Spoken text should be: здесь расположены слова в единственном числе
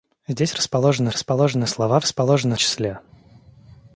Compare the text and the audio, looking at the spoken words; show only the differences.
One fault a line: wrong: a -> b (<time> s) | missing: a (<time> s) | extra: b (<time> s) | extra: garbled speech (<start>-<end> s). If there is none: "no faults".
extra: расположены (1.1 s)
wrong: единственном -> расположены (2.0 s)